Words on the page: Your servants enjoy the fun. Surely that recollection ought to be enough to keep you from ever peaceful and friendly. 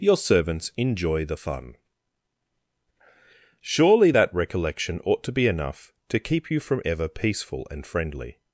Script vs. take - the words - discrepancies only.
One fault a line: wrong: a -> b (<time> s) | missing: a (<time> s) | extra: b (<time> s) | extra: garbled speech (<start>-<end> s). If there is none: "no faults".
no faults